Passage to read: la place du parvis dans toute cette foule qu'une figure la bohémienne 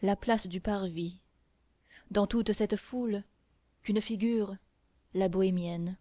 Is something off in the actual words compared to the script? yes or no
no